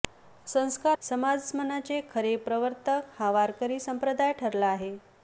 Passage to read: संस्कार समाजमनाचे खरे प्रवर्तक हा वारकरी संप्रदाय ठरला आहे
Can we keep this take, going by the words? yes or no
yes